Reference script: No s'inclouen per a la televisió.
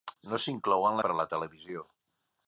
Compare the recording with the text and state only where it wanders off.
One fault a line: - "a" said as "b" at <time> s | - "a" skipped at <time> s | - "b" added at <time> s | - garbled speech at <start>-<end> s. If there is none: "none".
none